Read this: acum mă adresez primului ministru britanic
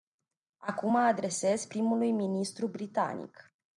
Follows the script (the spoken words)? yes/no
yes